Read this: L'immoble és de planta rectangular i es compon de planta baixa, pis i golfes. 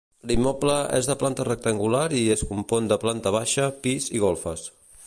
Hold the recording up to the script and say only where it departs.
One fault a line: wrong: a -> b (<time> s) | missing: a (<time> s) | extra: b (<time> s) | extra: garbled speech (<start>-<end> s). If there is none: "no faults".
no faults